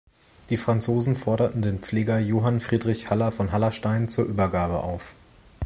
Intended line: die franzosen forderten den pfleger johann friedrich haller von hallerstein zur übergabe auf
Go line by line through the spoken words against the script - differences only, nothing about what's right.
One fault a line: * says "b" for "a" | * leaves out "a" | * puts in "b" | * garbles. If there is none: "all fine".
all fine